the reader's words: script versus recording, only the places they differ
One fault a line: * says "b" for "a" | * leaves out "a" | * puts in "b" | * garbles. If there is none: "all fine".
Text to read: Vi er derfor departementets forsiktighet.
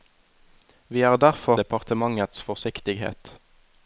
all fine